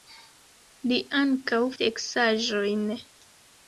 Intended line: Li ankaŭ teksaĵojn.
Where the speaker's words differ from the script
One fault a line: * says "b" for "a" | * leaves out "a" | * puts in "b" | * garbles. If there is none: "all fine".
all fine